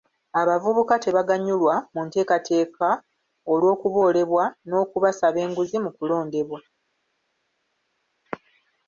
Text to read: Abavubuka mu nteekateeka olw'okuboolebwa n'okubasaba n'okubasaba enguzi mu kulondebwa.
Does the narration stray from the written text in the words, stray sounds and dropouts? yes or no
yes